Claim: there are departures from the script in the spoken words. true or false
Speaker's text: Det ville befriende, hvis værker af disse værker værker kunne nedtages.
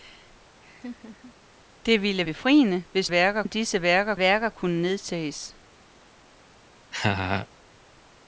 false